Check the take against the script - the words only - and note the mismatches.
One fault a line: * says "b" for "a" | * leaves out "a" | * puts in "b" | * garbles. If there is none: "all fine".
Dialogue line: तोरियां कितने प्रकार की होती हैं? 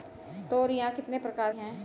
* leaves out "की होती"